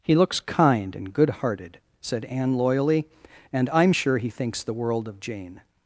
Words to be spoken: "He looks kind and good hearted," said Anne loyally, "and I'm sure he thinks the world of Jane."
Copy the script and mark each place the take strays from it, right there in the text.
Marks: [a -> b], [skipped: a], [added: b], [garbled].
"He looks kind and good hearted," said Anne loyally, "and I'm sure he thinks the world of Jane."